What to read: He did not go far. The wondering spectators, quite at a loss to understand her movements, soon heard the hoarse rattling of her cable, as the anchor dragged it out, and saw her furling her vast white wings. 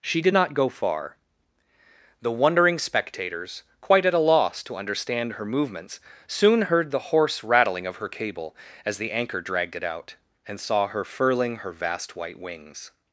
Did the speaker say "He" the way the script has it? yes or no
no